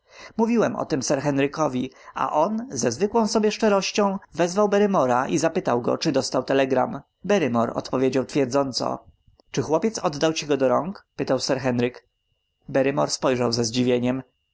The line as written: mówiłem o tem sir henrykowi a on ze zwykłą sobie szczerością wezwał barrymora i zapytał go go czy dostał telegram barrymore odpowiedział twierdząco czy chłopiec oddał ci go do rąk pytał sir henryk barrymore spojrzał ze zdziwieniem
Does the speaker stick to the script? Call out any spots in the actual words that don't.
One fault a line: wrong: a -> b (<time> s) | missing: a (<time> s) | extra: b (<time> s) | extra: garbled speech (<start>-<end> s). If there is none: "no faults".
missing: go (6.0 s)